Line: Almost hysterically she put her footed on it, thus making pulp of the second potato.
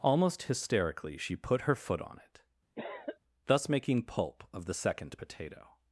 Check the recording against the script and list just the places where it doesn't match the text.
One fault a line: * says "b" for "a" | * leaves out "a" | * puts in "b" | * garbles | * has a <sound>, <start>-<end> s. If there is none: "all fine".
* says "foot" for "footed"
* has a cough, 2.8-3.2 s